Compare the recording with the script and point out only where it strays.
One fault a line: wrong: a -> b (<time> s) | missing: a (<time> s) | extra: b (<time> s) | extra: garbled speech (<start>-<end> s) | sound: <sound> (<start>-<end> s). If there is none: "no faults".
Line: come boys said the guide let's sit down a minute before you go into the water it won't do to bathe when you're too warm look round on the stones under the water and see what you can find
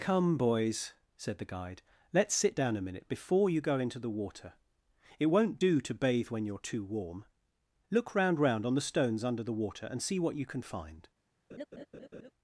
extra: round (8.4 s)
sound: laugh (11.5-12.3 s)